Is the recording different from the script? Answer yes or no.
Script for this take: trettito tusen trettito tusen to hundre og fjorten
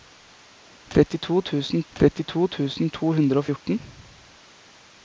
no